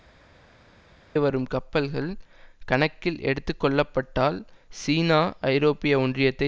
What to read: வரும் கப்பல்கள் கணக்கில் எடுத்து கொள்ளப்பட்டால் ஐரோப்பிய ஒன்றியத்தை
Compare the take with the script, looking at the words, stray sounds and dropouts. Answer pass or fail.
fail